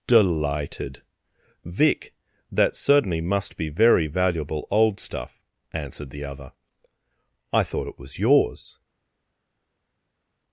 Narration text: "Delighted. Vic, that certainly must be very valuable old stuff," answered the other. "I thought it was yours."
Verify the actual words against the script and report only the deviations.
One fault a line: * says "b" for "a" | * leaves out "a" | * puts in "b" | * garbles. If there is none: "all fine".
all fine